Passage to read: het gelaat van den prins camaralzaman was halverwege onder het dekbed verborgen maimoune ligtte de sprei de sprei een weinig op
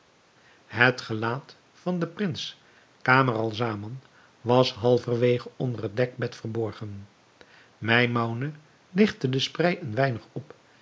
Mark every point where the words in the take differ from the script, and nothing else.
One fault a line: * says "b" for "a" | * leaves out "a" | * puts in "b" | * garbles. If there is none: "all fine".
* leaves out "de sprei"